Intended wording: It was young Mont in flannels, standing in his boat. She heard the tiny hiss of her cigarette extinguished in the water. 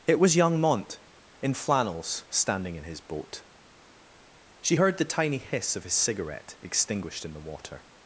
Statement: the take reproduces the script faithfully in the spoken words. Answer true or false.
false